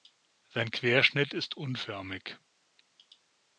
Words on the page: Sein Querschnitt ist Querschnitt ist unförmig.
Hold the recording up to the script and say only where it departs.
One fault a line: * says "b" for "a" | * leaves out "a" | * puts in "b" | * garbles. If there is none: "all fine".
* leaves out "Querschnitt ist"